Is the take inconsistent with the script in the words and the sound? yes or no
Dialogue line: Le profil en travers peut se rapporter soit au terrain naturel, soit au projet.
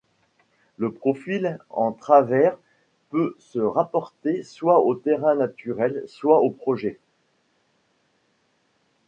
no